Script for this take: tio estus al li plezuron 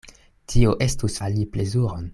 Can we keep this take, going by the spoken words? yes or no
yes